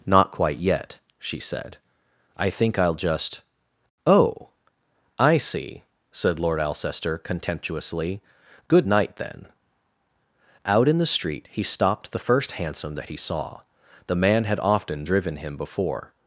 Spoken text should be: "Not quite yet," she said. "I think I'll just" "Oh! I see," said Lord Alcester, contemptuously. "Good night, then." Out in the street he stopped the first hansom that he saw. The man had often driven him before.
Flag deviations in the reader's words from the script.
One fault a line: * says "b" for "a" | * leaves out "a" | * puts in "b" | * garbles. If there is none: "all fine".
all fine